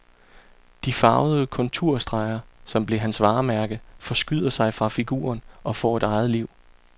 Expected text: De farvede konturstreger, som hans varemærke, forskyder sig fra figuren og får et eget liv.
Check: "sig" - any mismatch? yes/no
no